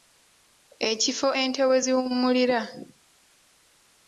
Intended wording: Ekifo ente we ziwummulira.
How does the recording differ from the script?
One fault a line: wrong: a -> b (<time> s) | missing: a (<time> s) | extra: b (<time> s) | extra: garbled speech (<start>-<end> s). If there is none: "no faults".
no faults